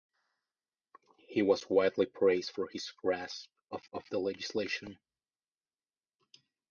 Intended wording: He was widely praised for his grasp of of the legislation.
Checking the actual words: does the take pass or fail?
pass